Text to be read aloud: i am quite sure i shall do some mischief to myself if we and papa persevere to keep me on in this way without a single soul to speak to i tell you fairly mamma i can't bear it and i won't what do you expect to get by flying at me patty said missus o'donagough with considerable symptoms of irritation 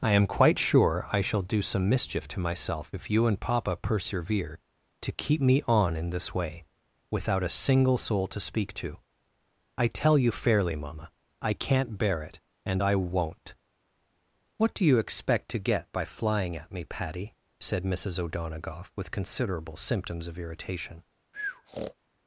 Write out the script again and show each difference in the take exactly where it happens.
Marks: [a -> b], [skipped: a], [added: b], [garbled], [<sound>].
i am quite sure i shall do some mischief to myself if [we -> you] and papa persevere to keep me on in this way without a single soul to speak to i tell you fairly mamma i can't bear it and i won't what do you expect to get by flying at me patty said missus o'donagough with considerable symptoms of irritation [breath]